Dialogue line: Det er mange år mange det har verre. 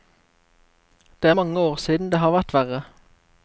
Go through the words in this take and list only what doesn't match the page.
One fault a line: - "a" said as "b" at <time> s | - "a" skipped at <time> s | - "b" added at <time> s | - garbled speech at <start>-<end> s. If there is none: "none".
- "mange" said as "siden" at 1.8 s
- "vært" added at 2.4 s